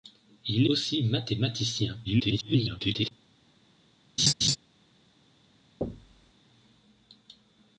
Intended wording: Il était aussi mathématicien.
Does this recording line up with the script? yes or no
no